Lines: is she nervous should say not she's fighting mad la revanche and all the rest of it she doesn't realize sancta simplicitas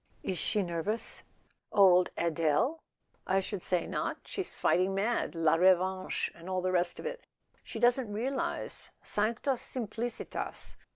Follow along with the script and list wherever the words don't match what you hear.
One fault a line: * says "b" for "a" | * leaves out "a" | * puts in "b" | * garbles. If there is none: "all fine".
* puts in "old adele i"